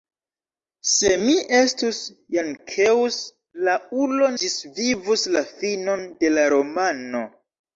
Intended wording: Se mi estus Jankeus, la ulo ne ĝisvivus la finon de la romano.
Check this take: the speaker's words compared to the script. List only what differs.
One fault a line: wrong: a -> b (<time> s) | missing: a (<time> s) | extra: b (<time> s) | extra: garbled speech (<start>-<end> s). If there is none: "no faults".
missing: ne (4.3 s)